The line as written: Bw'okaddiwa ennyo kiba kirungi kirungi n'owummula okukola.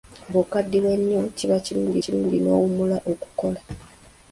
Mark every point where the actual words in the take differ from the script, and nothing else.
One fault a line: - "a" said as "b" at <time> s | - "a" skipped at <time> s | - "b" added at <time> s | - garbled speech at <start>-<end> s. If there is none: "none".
none